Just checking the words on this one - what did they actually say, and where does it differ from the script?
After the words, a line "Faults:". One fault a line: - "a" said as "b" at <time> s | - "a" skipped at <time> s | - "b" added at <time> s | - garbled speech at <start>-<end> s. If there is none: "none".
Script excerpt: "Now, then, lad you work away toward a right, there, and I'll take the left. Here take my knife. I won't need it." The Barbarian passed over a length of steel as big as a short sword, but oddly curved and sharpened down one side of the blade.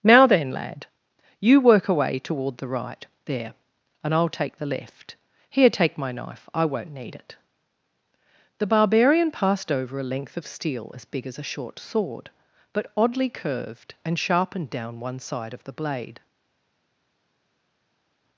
"Now, then, lad you work away toward the right, there, and I'll take the left. Here take my knife. I won't need it." The Barbarian passed over a length of steel as big as a short sword, but oddly curved and sharpened down one side of the blade.
Faults:
- "a" said as "the" at 2.6 s